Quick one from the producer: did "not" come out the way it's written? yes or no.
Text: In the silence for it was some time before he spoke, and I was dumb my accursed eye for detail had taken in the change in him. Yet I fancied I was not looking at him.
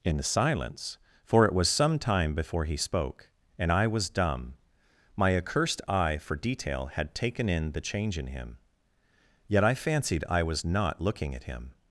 yes